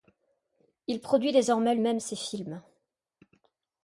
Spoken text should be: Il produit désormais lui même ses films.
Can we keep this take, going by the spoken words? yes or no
no